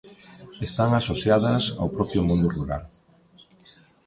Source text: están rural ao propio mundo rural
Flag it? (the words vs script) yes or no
yes